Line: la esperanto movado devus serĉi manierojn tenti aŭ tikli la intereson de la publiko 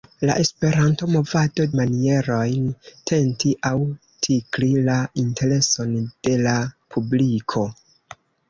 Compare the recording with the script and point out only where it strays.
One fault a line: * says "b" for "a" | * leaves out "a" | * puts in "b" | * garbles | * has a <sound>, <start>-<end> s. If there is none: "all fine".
* leaves out "devus serĉi"